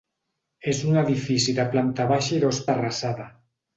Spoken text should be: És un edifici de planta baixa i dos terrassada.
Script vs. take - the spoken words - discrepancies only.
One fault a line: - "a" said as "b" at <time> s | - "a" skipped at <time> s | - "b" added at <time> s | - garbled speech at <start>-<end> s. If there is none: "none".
none